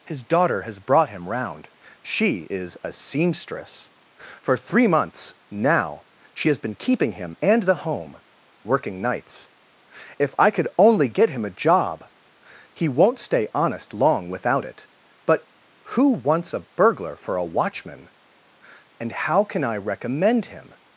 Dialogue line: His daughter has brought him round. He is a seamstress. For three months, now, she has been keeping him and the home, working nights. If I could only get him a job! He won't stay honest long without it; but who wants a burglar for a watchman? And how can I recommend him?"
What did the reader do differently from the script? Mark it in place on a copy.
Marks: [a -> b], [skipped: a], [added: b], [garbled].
His daughter has brought him round. [He -> She] is a seamstress. For three months, now, she has been keeping him and the home, working nights. If I could only get him a job! He won't stay honest long without it; but who wants a burglar for a watchman? And how can I recommend him?"